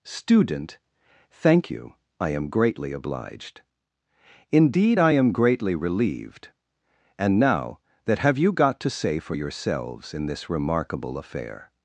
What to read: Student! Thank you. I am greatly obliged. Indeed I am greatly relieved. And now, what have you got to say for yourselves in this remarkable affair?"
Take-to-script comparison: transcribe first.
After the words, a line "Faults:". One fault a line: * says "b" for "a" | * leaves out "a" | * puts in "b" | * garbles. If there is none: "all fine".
Student! Thank you. I am greatly obliged. Indeed I am greatly relieved. And now, that have you got to say for yourselves in this remarkable affair?"
Faults:
* says "that" for "what"